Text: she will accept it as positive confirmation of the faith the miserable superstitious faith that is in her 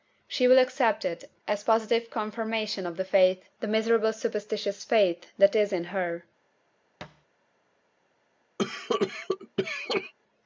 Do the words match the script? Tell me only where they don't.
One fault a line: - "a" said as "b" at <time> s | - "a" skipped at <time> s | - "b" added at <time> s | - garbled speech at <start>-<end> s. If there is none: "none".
none